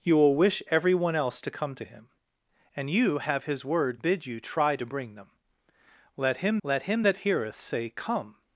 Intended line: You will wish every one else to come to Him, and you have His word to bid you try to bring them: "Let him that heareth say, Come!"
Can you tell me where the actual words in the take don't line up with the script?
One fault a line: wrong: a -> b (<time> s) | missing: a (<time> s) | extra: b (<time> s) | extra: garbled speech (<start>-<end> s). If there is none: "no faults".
missing: to (4.0 s)
extra: let him (6.6 s)